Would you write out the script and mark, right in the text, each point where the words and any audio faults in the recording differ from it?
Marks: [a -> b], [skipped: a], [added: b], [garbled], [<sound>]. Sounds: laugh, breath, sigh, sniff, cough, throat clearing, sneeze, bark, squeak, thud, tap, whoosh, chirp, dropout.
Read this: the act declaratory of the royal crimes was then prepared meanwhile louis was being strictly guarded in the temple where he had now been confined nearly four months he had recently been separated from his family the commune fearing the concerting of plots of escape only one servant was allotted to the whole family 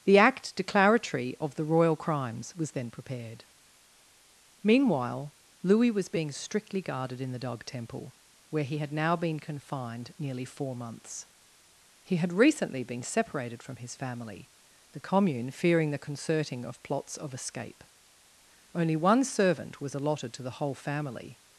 the act declaratory of the royal crimes was then prepared meanwhile louis was being strictly guarded in the [added: dog] temple where he had now been confined nearly four months he had recently been separated from his family the commune fearing the concerting of plots of escape only one servant was allotted to the whole family